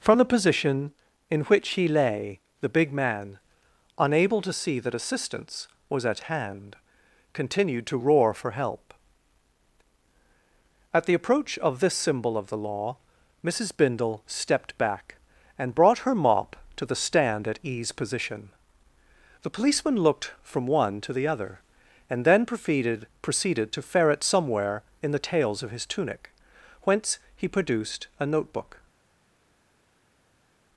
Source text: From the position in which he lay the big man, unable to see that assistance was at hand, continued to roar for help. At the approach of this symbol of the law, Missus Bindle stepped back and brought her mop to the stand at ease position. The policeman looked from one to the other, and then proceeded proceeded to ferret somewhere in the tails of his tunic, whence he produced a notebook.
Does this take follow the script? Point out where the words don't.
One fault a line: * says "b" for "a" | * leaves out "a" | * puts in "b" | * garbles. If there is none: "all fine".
all fine